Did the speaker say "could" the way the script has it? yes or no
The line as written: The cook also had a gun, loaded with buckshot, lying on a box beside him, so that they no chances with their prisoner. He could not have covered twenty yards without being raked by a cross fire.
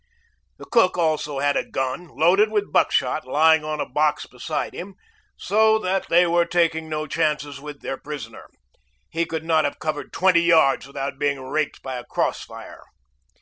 yes